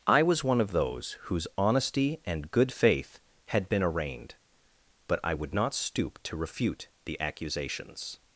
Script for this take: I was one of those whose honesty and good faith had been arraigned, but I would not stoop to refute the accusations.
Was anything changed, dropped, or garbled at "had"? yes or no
no